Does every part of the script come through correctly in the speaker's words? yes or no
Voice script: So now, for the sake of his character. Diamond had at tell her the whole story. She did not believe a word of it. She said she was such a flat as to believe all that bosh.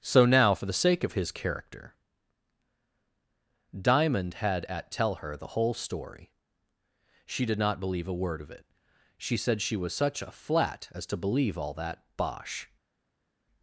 yes